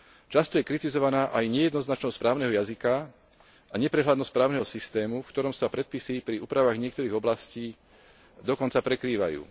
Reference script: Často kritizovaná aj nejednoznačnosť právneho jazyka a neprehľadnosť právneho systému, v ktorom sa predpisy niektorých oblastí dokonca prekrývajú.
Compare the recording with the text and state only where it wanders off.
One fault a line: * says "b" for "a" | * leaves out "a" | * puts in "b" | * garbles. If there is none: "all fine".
* puts in "je"
* puts in "pri úpravách"